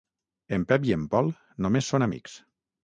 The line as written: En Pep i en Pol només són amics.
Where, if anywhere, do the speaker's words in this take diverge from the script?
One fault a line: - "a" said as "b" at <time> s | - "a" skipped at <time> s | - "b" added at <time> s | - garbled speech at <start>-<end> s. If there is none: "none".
none